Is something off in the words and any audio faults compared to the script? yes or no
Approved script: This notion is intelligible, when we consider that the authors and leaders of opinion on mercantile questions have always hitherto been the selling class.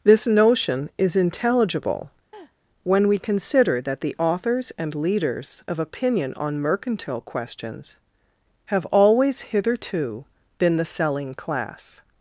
yes